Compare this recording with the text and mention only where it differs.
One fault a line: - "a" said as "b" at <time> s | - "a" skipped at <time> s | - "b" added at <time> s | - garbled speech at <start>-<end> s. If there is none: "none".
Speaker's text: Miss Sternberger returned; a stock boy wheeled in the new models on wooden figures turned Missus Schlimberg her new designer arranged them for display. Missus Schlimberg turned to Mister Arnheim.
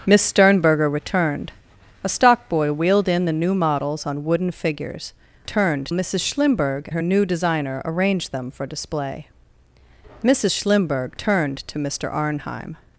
none